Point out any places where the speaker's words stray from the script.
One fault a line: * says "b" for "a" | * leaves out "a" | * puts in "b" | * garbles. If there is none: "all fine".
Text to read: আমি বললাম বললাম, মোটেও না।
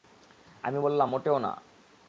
* leaves out "বললাম"